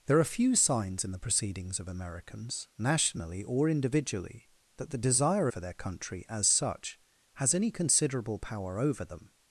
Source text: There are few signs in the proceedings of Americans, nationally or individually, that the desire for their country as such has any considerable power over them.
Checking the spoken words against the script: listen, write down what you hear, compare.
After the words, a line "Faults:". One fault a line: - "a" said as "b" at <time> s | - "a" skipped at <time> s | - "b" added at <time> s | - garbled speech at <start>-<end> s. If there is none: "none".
There are few signs in the proceedings of Americans, nationally or individually, that the desire for their country as such has any considerable power over them.
Faults:
none